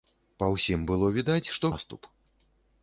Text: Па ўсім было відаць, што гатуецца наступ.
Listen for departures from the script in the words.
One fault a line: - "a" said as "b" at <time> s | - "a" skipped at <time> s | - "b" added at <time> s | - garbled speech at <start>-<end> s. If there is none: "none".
- "гатуецца" skipped at 1.7 s